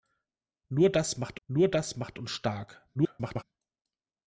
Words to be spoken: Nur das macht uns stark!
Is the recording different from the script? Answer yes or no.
yes